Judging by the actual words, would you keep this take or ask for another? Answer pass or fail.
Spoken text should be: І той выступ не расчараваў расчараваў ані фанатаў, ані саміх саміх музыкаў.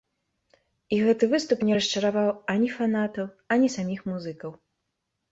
fail